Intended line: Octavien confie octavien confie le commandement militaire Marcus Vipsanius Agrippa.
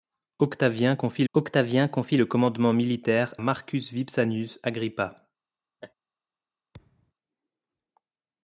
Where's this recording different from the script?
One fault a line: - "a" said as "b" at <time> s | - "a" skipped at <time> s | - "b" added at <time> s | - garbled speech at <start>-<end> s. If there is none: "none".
none